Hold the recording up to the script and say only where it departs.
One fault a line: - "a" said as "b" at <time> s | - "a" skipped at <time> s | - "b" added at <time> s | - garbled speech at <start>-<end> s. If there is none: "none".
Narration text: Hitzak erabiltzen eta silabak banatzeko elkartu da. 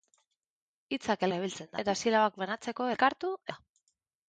none